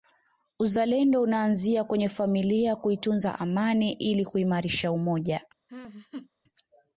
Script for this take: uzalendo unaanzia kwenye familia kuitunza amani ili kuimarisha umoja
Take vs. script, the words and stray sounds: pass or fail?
fail